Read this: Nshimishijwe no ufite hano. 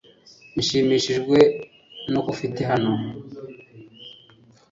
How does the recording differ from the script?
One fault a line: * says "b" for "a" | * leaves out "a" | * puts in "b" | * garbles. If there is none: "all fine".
all fine